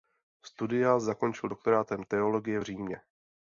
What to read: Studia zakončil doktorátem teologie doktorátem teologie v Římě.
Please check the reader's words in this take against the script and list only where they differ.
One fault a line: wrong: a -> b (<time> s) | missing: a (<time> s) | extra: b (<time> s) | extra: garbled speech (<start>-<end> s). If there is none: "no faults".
missing: doktorátem teologie (2.6 s)